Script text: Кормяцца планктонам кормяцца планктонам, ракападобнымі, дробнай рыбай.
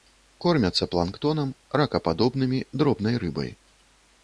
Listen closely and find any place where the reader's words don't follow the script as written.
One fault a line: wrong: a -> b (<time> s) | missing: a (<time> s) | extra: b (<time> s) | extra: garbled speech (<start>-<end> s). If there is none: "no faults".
missing: кормяцца планктонам (1.5 s)